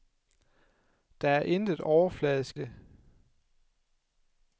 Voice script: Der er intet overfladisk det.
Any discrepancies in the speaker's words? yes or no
no